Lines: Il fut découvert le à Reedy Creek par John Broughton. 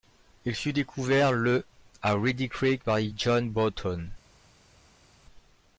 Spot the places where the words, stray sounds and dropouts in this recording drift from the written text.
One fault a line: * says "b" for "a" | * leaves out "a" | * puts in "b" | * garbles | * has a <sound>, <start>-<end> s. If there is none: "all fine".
all fine